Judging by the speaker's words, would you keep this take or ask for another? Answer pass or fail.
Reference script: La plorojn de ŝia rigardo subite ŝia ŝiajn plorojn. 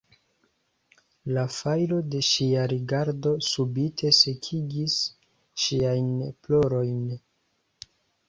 fail